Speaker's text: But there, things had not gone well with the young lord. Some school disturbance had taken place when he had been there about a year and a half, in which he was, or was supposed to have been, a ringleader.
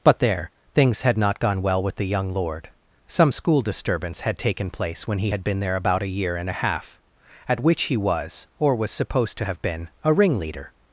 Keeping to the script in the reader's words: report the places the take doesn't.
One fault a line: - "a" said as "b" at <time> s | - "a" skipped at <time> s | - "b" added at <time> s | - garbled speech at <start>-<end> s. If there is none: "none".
- "in" said as "at" at 7.5 s